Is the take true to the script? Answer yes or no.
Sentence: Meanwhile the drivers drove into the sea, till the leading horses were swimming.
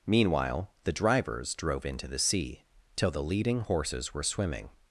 yes